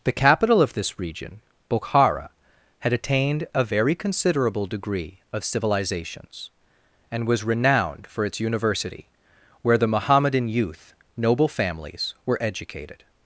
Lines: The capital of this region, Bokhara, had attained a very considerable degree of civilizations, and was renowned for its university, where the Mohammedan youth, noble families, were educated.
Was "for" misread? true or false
false